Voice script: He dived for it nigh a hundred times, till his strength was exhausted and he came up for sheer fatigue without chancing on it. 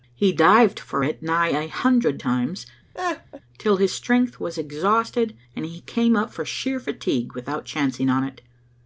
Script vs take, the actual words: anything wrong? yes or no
no